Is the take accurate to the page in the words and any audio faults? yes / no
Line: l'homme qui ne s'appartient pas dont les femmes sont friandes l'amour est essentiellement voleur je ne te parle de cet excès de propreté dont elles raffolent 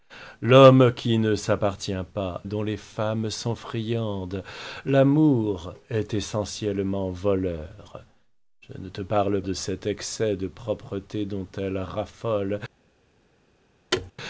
no